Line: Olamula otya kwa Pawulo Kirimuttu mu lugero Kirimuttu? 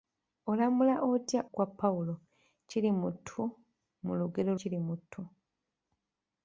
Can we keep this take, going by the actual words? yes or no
yes